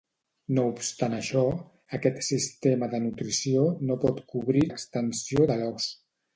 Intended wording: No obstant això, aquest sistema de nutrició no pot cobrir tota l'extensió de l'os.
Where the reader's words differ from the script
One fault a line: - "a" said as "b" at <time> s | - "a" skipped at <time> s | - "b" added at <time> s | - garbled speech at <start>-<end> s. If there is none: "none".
- "tota" skipped at 4.7 s